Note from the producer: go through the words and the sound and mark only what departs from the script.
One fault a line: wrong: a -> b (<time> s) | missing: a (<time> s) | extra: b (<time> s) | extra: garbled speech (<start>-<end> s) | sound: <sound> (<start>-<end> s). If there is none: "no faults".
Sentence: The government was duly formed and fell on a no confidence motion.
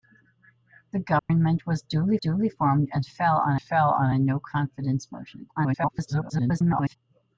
sound: dropout (1.2-1.3 s)
extra: duly (2.2 s)
extra: fell on (3.6 s)
extra: garbled speech (5.6-7.0 s)